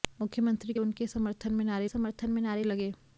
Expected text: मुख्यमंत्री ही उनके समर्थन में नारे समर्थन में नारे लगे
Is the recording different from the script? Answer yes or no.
no